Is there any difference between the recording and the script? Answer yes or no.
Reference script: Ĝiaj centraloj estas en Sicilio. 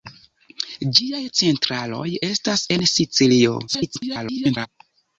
yes